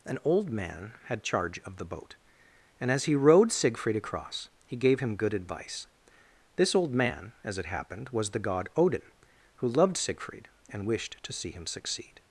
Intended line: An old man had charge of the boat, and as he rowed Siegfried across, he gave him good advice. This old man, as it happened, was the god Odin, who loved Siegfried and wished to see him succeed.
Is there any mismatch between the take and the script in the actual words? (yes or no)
no